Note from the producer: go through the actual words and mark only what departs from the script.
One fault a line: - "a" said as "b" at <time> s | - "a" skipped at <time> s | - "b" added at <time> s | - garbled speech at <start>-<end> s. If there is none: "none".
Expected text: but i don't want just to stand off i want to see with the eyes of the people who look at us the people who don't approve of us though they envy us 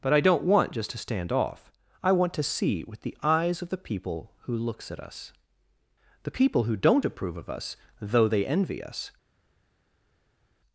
- "look" said as "looks" at 4.6 s